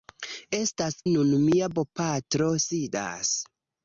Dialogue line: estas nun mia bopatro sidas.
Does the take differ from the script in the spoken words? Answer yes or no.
no